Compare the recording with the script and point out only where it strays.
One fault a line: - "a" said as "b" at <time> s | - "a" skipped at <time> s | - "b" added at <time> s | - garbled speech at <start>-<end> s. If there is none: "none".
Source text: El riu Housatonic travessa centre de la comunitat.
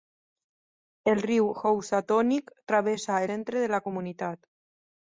none